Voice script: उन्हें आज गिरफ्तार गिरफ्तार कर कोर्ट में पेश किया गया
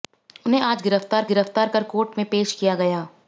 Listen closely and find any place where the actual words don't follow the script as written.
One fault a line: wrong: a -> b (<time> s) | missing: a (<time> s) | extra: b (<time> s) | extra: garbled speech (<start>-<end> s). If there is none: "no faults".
no faults